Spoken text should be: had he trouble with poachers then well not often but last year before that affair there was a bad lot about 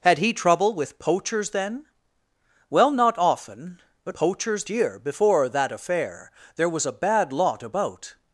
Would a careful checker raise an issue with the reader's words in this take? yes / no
yes